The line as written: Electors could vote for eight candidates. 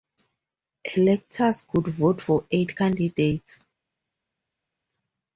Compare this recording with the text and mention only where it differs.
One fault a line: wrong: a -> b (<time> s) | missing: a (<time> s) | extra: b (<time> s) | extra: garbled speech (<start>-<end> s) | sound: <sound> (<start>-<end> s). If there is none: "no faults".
no faults